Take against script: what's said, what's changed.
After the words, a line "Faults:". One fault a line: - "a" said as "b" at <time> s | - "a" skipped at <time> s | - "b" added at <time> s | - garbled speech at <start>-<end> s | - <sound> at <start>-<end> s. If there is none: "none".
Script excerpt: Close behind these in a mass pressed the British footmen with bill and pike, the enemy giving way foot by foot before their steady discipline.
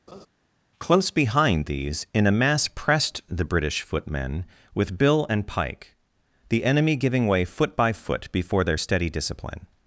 Close behind these in a mass pressed the British footmen with bill and pike, the enemy giving way foot by foot before their steady discipline.
Faults:
- laugh at 0.1-0.3 s